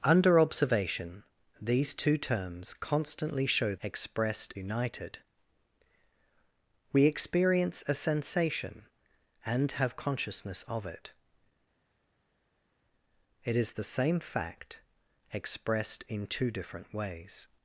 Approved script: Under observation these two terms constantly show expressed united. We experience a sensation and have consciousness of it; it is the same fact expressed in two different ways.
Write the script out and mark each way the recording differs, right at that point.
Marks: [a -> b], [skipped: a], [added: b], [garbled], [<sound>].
Under observation these two terms constantly show expressed united. We experience a sensation and have consciousness of it; it is the same fact expressed in two different ways.